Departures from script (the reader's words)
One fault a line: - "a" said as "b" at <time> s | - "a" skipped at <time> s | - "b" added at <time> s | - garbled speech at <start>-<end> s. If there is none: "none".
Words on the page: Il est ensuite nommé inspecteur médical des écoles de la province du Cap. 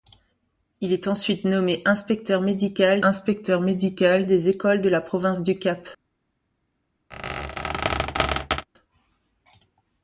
- "inspecteur médical" added at 3.0 s